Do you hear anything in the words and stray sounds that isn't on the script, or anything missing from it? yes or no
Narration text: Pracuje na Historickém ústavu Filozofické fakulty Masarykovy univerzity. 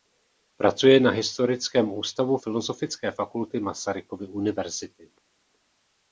no